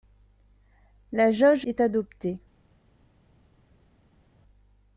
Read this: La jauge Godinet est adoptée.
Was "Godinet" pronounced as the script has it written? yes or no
no